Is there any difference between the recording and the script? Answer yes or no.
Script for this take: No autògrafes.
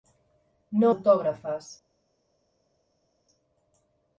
no